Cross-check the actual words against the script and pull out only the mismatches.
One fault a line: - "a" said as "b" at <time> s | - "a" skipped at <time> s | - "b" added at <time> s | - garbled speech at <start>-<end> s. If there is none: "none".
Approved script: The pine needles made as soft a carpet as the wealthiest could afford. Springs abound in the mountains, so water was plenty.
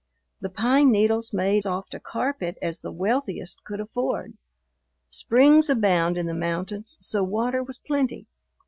- "as" skipped at 1.6 s